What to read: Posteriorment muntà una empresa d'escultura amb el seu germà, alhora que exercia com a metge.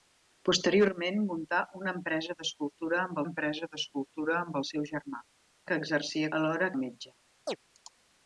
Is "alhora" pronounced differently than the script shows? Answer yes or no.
yes